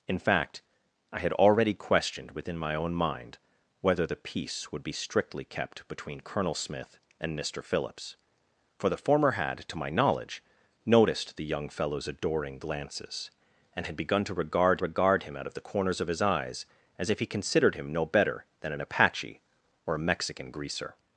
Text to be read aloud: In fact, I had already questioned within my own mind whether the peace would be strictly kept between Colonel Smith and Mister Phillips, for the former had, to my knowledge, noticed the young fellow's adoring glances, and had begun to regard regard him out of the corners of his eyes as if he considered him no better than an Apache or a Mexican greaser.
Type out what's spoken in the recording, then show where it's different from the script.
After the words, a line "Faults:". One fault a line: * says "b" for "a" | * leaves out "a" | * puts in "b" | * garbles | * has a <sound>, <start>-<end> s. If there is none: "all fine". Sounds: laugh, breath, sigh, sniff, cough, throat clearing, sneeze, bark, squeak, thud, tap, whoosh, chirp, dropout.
In fact, I had already questioned within my own mind whether the peace would be strictly kept between Colonel Smith and Mister Phillips, for the former had, to my knowledge, noticed the young fellow's adoring glances, and had begun to regard regard him out of the corners of his eyes as if he considered him no better than an Apache or a Mexican greaser.
Faults:
all fine